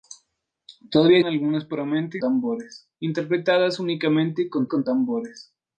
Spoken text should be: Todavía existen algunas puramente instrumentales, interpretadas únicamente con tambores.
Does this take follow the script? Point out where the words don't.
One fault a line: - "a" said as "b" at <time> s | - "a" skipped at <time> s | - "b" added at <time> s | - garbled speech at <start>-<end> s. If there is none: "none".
- "existen" skipped at 1.2 s
- "instrumentales" said as "tambores" at 2.2 s
- "con" added at 4.7 s